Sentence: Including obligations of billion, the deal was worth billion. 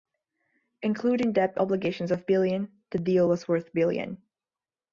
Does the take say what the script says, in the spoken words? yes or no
no